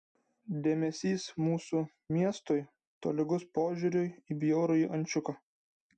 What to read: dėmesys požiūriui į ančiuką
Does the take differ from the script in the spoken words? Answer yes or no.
yes